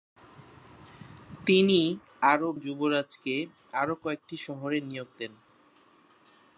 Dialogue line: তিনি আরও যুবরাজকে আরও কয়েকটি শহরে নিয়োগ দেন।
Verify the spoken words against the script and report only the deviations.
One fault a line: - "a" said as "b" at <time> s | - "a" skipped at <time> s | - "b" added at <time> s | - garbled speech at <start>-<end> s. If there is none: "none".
none